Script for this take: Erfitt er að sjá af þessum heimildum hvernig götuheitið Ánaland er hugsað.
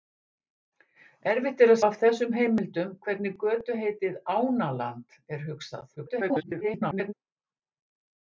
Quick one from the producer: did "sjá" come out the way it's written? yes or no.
no